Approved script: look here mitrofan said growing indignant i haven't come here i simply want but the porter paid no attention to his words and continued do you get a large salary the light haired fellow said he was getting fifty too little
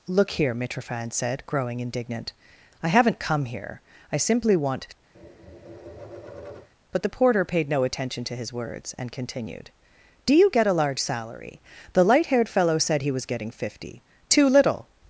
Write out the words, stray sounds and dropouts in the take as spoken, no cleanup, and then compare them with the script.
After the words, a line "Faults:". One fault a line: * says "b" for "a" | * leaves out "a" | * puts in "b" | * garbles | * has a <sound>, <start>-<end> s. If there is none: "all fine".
look here mitrofan said growing indignant i haven't come here i simply want but the porter paid no attention to his words and continued do you get a large salary the light haired fellow said he was getting fifty too little
Faults:
* has a tap, 5.1-6.7 s